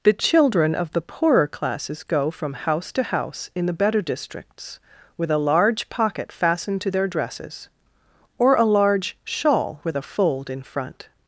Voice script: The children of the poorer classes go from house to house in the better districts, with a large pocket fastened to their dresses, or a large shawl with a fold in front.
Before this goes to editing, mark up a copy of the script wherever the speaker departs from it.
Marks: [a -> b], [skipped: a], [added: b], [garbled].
The children of the poorer classes go from house to house in the better districts, with a large pocket fastened to their dresses, or a large shawl with a fold in front.